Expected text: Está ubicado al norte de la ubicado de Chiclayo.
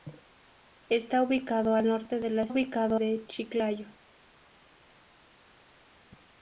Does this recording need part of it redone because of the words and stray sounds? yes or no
no